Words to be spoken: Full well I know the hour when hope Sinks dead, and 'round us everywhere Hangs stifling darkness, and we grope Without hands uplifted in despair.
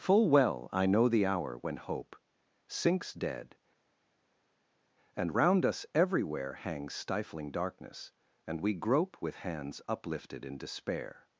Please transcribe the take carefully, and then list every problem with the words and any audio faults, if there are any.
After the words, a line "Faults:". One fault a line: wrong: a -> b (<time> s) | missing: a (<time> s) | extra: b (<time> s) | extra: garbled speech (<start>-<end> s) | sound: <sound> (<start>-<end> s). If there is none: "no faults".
Full well I know the hour when hope Sinks dead, and 'round us everywhere Hangs stifling darkness, and we grope With hands uplifted in despair.
Faults:
wrong: Without -> With (9.2 s)